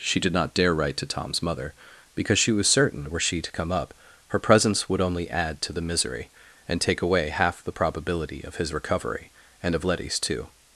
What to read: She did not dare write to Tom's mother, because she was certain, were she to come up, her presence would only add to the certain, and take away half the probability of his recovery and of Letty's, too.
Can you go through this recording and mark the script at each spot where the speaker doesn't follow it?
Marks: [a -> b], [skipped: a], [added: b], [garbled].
She did not dare write to Tom's mother, because she was certain, were she to come up, her presence would only add to the [certain, -> misery] and take away half the probability of his recovery and of Letty's, too.